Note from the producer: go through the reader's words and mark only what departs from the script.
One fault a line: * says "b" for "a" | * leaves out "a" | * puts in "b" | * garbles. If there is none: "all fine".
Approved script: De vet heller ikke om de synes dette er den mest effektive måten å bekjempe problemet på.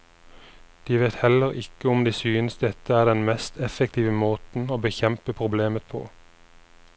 all fine